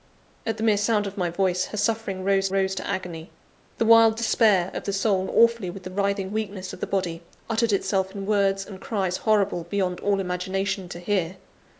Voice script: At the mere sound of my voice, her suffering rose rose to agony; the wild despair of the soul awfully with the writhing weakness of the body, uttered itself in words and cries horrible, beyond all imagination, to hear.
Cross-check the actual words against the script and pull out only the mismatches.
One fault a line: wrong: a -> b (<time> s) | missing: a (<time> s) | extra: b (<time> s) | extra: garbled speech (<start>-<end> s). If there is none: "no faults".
no faults